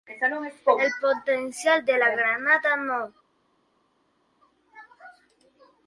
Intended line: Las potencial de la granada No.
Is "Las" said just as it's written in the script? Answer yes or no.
no